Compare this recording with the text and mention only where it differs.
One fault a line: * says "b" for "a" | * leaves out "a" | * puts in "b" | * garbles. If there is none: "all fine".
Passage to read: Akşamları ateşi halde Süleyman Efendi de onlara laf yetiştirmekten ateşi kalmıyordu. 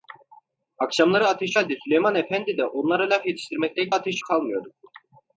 all fine